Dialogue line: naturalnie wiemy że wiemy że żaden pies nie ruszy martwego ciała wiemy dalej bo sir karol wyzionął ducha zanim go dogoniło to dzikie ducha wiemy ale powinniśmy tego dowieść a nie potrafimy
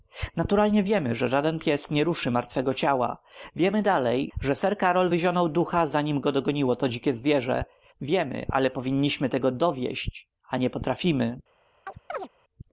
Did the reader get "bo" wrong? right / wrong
wrong